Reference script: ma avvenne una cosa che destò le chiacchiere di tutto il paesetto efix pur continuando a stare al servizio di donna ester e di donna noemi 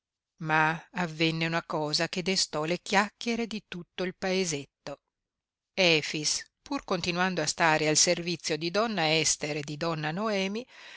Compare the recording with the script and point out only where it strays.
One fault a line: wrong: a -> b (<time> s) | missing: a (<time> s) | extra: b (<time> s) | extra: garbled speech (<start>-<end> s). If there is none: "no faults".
no faults